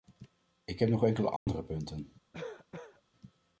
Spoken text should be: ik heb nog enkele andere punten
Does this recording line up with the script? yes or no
yes